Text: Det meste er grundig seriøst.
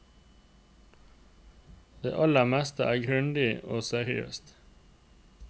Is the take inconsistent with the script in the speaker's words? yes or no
yes